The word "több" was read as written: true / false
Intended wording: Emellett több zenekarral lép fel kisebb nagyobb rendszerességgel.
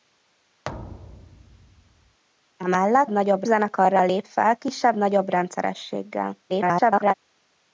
false